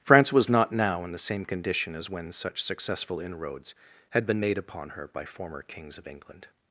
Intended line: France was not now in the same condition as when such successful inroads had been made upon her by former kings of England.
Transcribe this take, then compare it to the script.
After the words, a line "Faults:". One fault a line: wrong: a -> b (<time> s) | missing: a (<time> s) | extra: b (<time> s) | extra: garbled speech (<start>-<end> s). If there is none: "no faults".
France was not now in the same condition as when such successful inroads had been made upon her by former kings of England.
Faults:
no faults